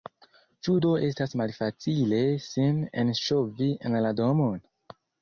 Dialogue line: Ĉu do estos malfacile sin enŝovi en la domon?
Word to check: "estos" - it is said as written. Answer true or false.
false